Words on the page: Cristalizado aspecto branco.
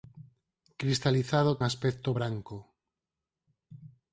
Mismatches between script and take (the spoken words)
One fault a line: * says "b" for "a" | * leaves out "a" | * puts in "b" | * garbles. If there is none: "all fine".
all fine